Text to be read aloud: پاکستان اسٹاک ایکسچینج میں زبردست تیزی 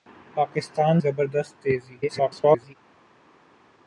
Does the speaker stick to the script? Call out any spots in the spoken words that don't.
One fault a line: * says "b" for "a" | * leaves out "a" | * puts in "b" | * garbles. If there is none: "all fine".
* leaves out "اسٹاک ایکسچینج میں"
* garbles